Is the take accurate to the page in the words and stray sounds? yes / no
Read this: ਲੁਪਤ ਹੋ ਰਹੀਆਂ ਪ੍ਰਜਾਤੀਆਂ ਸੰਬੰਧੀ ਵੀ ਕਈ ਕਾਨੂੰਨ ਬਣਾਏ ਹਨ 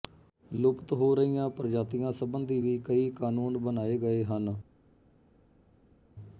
no